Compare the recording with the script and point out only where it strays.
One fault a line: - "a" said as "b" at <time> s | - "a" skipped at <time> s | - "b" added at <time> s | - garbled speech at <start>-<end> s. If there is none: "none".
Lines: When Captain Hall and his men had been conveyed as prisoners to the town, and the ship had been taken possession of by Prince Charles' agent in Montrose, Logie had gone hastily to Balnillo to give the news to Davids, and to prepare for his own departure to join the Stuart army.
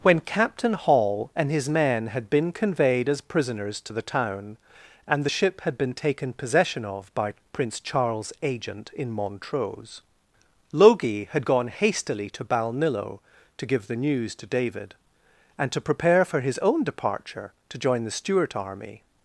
- "Davids" said as "David" at 14.5 s